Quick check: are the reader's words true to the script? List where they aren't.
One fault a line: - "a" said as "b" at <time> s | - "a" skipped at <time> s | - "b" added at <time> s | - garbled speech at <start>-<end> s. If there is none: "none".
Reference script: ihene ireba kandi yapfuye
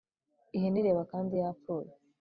none